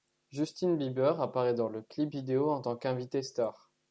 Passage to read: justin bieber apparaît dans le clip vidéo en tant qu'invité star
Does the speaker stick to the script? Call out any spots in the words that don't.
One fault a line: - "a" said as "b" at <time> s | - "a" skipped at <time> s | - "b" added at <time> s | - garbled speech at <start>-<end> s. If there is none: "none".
none